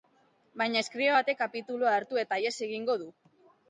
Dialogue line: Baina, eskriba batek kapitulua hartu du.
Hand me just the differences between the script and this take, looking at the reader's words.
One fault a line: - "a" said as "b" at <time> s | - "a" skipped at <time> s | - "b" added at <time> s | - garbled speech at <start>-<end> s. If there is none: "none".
- "eta ihes egingo" added at 2.2 s